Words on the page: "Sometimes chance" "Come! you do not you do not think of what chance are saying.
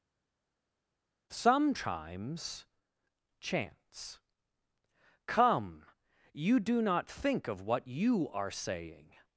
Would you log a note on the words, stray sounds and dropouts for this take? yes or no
yes